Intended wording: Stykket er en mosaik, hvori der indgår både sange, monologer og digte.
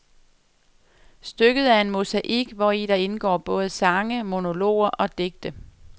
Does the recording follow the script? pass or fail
pass